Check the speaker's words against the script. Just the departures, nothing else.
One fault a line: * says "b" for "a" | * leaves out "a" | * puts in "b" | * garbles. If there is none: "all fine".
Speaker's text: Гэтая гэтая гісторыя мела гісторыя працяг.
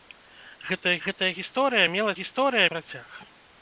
all fine